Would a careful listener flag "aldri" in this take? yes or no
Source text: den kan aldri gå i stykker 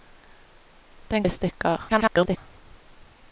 yes